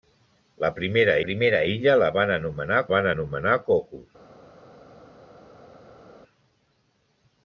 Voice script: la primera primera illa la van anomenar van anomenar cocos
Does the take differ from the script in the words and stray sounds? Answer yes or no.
no